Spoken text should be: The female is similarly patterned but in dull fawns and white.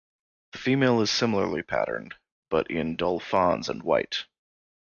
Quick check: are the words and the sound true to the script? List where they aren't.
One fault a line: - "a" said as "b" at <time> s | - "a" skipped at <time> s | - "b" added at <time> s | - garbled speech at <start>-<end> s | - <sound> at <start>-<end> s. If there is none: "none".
none